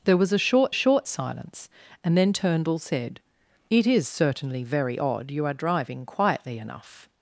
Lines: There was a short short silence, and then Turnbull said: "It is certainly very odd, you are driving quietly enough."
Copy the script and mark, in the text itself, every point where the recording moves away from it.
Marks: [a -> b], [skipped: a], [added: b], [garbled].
There was a short short silence, and then Turnbull said: "It is certainly very odd, you are driving quietly enough."